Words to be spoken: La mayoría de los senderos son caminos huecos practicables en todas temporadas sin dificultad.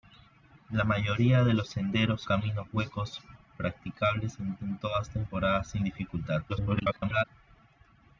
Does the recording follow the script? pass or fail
fail